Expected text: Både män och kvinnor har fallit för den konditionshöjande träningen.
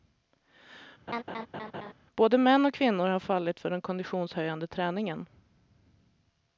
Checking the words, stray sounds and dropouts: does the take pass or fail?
fail